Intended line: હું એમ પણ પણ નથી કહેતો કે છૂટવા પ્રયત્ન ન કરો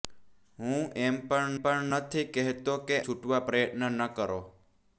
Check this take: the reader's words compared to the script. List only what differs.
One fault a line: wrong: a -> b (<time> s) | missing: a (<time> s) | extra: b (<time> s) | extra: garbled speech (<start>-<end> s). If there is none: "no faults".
no faults